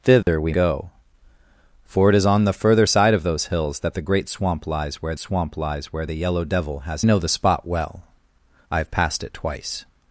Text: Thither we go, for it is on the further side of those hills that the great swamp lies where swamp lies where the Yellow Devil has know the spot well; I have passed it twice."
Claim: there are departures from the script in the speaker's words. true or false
false